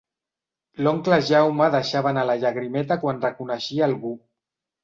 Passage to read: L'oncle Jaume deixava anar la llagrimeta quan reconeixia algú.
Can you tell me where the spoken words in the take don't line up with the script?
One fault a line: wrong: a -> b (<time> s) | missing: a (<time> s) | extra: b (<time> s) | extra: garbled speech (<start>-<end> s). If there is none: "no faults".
no faults